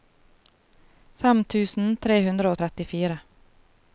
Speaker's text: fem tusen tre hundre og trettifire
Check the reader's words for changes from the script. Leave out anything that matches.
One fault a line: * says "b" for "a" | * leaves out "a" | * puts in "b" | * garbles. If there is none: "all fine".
all fine